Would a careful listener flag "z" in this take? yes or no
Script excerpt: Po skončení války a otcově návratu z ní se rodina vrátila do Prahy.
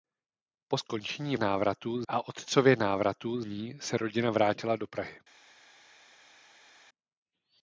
yes